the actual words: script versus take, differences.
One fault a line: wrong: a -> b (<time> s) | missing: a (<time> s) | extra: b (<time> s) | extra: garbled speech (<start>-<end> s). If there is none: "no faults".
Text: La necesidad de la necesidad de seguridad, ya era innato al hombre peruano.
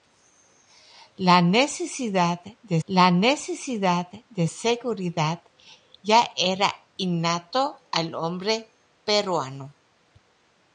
no faults